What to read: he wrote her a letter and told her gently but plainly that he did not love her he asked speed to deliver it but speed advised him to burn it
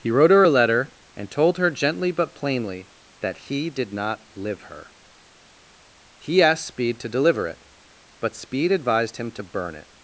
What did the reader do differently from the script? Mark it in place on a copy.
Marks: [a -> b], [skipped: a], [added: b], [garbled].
he wrote her a letter and told her gently but plainly that he did not [love -> live] her he asked speed to deliver it but speed advised him to burn it